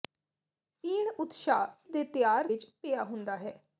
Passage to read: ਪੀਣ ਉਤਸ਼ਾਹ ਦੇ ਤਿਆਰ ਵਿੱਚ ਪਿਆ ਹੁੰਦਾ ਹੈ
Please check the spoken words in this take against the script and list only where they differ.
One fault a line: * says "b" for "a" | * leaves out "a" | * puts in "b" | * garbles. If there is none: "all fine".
all fine